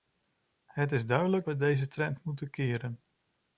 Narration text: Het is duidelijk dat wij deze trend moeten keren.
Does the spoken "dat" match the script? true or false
false